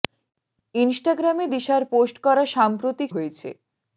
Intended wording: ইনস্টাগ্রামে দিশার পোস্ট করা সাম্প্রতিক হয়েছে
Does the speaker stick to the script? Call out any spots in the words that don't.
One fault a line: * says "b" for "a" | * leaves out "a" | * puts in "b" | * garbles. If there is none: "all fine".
all fine